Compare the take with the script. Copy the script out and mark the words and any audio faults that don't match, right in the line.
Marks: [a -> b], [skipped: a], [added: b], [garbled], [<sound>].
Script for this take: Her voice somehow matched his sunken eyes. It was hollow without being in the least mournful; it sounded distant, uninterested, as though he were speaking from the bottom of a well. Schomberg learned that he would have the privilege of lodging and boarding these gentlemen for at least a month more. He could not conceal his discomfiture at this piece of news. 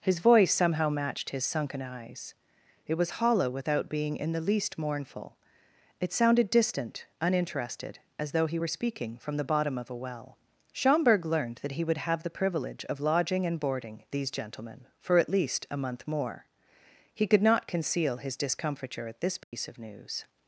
[Her -> His] voice somehow matched his sunken eyes. It was hollow without being in the least mournful; it sounded distant, uninterested, as though he were speaking from the bottom of a well. Schomberg learned that he would have the privilege of lodging and boarding these gentlemen for at least a month more. He could not conceal his discomfiture at this piece [dropout] of news.